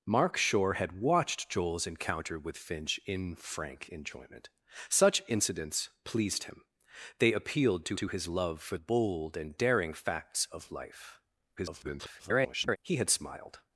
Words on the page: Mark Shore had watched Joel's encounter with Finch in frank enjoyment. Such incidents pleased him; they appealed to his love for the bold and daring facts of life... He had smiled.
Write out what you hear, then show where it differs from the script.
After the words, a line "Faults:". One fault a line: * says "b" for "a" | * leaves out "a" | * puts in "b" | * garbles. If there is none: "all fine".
Mark Shore had watched Joel's encounter with Finch in frank enjoyment. Such incidents pleased him; they appealed to to his love for bold and daring facts of life... [garbled] He had smiled.
Faults:
* puts in "to"
* leaves out "the"
* garbles